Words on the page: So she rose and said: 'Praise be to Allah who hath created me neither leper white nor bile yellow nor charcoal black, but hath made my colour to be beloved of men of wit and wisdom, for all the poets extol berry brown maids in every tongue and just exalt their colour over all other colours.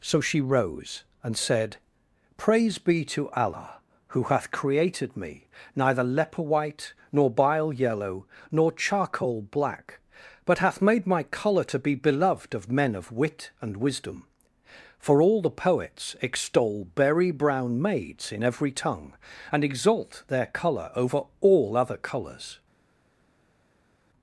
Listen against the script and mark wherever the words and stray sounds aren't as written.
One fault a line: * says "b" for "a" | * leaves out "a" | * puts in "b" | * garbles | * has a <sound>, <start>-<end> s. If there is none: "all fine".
* leaves out "just"